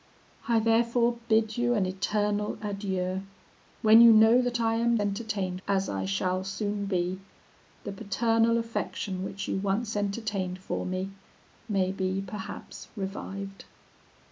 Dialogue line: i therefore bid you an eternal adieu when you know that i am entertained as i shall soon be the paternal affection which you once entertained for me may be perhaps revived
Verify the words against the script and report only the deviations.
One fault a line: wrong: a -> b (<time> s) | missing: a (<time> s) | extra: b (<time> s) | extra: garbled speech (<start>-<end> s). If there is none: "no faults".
no faults